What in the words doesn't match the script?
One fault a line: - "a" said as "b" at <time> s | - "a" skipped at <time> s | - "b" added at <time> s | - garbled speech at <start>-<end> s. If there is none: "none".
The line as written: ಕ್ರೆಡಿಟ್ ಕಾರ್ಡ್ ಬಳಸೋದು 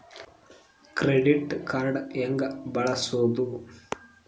- "ಹೆಂಗ" added at 2.1 s